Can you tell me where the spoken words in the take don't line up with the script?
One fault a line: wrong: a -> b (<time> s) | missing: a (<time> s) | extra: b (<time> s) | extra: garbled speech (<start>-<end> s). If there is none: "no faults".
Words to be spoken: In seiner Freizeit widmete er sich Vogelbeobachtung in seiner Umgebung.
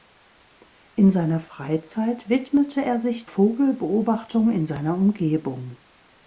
no faults